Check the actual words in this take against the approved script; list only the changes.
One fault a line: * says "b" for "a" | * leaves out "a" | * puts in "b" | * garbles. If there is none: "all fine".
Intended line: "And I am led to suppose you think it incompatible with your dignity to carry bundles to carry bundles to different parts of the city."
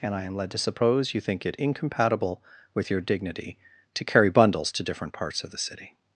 * leaves out "carry bundles to"